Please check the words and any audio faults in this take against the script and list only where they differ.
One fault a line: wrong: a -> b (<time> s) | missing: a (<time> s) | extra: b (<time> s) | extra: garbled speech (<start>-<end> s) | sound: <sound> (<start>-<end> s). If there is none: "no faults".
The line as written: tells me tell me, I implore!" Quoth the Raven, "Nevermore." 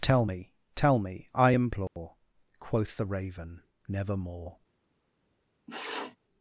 wrong: tells -> tell (0.0 s)
sound: dropout (1.9-2.0 s)
sound: sniff (5.7-6.2 s)